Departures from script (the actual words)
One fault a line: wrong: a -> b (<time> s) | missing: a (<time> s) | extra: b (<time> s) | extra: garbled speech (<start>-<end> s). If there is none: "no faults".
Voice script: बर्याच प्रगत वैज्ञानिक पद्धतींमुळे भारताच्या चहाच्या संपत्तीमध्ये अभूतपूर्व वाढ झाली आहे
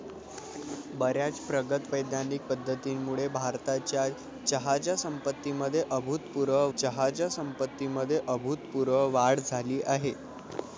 extra: चहाच्या संपत्तीमध्ये अभूतपूर्व (6.8 s)